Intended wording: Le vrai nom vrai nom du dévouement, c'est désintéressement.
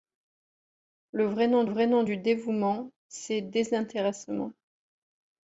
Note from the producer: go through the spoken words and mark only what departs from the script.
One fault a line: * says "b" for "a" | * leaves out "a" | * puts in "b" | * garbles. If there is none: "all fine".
all fine